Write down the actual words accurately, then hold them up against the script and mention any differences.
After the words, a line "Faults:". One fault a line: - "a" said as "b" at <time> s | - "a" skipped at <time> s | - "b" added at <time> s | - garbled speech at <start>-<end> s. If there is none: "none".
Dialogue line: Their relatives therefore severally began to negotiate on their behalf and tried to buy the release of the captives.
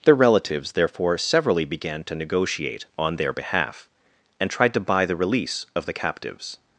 Their relatives therefore severally began to negotiate on their behalf and tried to buy the release of the captives.
Faults:
none